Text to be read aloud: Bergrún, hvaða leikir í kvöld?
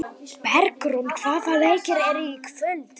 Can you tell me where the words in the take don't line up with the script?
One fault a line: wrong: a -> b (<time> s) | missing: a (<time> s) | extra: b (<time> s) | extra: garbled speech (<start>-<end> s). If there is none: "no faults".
extra: eru (2.1 s)